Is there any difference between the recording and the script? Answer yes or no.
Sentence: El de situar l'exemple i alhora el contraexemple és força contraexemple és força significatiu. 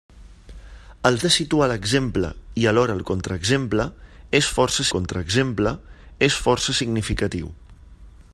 no